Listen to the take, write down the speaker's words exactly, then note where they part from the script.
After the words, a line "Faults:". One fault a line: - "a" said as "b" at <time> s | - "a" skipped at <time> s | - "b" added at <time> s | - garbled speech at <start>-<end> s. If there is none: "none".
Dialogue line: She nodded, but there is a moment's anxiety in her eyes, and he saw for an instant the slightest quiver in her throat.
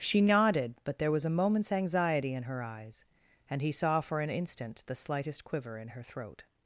She nodded, but there was a moment's anxiety in her eyes, and he saw for an instant the slightest quiver in her throat.
Faults:
- "is" said as "was" at 1.1 s